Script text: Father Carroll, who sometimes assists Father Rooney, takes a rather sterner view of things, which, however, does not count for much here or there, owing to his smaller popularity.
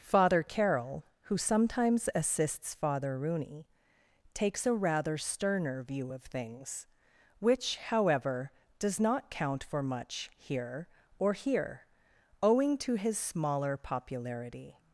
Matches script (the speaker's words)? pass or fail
fail